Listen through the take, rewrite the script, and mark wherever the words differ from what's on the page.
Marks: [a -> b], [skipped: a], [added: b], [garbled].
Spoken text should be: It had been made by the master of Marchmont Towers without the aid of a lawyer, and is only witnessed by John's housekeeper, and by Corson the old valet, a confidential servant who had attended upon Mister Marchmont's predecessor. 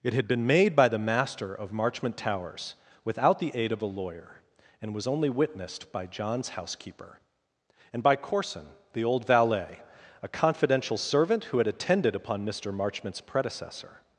It had been made by the master of Marchmont Towers without the aid of a lawyer, and [is -> was] only witnessed by John's housekeeper, and by Corson the old valet, a confidential servant who had attended upon Mister Marchmont's predecessor.